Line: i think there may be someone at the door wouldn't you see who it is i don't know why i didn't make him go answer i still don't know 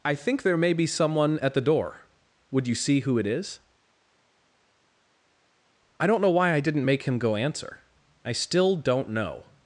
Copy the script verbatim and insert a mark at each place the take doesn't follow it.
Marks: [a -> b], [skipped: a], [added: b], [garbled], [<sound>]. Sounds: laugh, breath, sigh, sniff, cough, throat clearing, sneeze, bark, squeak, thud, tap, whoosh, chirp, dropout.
i think there may be someone at the door [wouldn't -> would] you see who it is i don't know why i didn't make him go answer i still don't know